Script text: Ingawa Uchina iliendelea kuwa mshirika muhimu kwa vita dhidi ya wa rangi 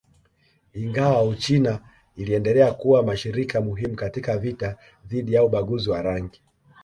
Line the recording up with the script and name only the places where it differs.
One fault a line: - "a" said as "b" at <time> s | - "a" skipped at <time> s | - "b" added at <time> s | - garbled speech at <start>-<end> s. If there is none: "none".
- "kwa" said as "katika" at 4.0 s
- "ubaguzi" added at 5.4 s